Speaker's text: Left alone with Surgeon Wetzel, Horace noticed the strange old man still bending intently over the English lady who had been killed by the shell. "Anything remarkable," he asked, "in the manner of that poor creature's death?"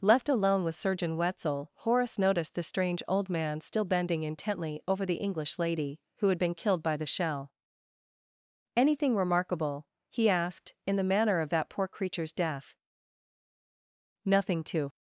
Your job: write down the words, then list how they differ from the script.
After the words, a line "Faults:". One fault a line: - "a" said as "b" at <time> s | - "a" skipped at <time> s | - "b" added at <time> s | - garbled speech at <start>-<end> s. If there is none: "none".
Left alone with Surgeon Wetzel, Horace noticed the strange old man still bending intently over the English lady who had been killed by the shell. "Anything remarkable," he asked, "in the manner of that poor creature's death?" "Nothing to
Faults:
- "Nothing to" added at 14.2 s